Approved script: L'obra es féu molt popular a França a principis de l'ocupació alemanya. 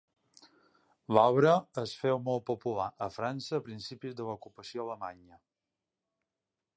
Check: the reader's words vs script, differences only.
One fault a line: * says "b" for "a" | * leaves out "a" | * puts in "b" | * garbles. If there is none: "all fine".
all fine